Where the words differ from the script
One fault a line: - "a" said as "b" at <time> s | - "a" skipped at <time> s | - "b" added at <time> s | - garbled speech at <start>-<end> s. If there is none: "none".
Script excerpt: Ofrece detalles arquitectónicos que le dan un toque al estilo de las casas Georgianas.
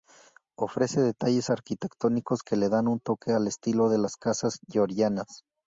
none